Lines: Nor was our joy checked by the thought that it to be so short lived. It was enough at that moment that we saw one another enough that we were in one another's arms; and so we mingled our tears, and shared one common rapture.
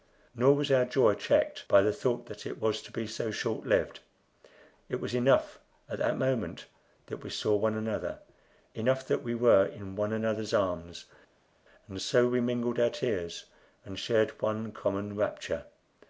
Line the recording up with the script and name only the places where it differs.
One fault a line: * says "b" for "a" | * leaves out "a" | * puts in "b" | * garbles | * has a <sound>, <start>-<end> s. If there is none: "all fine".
* puts in "was"